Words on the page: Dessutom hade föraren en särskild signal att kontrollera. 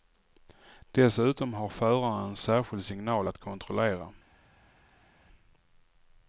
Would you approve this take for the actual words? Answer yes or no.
no